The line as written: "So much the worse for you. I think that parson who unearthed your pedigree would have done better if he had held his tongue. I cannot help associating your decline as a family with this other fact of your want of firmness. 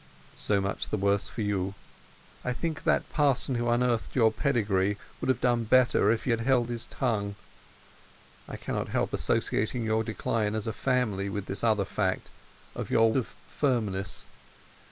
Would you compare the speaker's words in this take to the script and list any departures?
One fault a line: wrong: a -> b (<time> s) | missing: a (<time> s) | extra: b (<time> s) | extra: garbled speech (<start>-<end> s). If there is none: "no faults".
missing: want (13.1 s)